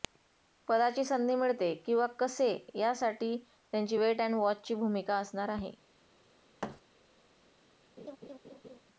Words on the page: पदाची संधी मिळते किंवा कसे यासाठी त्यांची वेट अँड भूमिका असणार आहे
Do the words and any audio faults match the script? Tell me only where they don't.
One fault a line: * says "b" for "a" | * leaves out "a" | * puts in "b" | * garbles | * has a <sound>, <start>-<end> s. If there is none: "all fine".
* puts in "वॉचची"
* has a thud, 6.6-6.8 s
* has a laugh, 8.0-8.8 s